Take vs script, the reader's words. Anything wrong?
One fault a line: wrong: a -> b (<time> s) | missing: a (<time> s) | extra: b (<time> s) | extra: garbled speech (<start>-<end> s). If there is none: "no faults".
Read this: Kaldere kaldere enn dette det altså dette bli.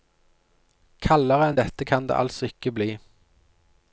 missing: kaldere (1.5 s)
extra: kan (1.9 s)
wrong: dette -> ikke (2.5 s)